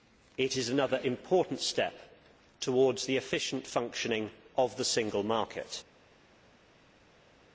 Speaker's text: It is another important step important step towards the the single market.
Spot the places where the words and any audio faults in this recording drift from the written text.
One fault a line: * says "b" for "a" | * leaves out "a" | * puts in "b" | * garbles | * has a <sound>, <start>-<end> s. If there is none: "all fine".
* says "towards the efficient functioning of" for "important step towards the"